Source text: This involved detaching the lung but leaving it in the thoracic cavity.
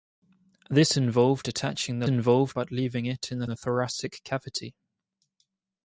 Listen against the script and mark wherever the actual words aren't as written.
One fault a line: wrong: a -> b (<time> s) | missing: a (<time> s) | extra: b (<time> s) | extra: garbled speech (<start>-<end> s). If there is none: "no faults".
wrong: lung -> involved (2.1 s)
extra: the (3.4 s)